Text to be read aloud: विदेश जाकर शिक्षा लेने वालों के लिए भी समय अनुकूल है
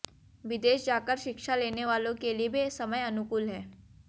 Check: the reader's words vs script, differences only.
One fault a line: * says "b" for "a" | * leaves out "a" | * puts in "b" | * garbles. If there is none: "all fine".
all fine